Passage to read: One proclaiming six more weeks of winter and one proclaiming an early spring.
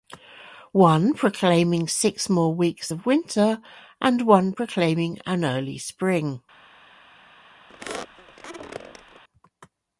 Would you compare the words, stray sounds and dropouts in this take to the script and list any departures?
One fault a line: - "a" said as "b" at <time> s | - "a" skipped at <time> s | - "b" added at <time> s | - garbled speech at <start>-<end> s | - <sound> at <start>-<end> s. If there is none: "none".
- squeak at 7.7-9.2 s